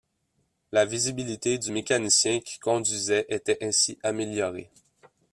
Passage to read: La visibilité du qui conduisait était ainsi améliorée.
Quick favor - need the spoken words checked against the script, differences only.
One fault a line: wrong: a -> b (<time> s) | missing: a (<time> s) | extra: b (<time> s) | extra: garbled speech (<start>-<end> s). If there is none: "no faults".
extra: mécanicien (1.7 s)